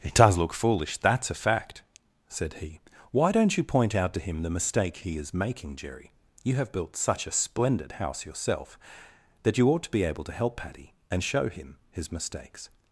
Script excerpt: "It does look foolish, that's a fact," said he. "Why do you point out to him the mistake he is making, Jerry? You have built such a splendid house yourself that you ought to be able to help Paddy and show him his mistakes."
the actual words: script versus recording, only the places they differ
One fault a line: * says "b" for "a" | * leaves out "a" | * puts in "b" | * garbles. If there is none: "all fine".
* says "don't" for "do"